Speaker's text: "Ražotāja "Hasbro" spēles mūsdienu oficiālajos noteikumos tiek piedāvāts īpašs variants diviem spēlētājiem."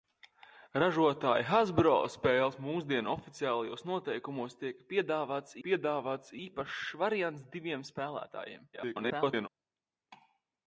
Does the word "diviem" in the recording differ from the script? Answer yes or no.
no